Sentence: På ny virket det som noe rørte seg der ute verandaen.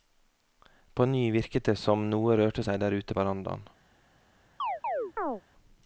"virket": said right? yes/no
yes